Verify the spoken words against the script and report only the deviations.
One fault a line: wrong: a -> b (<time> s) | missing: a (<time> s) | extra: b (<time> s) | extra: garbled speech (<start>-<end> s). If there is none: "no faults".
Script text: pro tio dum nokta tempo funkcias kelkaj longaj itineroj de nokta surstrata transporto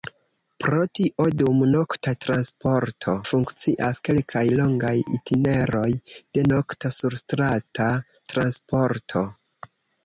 wrong: tempo -> transporto (2.3 s)